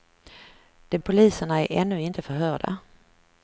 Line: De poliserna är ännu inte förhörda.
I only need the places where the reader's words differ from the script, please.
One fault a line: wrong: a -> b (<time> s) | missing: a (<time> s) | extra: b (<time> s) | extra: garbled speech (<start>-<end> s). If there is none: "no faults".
no faults